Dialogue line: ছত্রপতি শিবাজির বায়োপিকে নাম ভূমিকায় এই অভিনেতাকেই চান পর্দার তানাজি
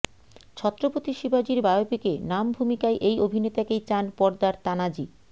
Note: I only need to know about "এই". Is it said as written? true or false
true